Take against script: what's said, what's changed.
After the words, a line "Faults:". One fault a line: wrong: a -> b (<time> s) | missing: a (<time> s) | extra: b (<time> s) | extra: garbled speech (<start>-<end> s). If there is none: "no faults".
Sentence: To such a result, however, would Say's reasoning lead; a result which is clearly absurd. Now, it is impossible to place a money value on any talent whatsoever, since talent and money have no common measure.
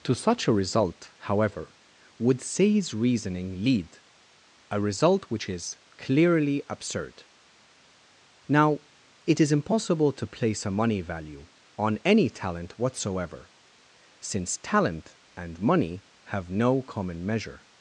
To such a result, however, would Say's reasoning lead; a result which is clearly absurd. Now, it is impossible to place a money value on any talent whatsoever, since talent and money have no common measure.
Faults:
no faults